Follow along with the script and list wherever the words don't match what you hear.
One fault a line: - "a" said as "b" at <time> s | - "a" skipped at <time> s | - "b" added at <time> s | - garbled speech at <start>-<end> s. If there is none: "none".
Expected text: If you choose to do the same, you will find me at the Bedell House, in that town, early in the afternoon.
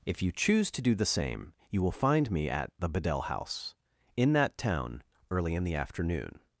none